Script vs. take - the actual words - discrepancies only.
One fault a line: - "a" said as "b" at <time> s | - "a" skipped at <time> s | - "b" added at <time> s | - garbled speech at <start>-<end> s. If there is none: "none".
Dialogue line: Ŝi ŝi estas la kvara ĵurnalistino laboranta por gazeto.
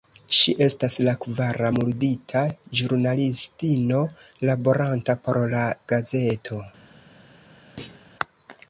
- "ŝi" skipped at 0.5 s
- "murdita" added at 1.8 s
- "la" added at 5.6 s